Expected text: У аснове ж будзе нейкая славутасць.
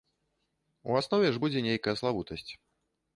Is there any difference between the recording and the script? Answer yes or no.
no